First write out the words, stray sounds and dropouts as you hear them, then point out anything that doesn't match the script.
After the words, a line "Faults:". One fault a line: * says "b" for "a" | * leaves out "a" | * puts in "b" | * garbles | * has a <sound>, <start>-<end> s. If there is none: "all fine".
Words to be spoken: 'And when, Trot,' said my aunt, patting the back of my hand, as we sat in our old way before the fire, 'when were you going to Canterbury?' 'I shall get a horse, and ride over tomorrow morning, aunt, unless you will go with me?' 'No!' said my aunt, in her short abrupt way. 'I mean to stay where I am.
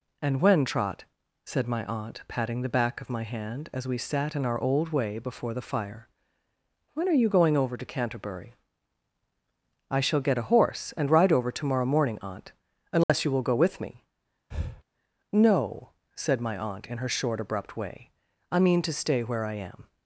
'And when, Trot,' said my aunt, patting the back of my hand, as we sat in our old way before the fire, 'when are you going over to Canterbury?' 'I shall get a horse, and ride over tomorrow morning, aunt, unless you will go with me?' 'No!' said my aunt, in her short abrupt way. 'I mean to stay where I am.
Faults:
* says "are" for "were"
* puts in "over"
* has a dropout, 13.0-13.1 s
* has a breath, 14.5-14.8 s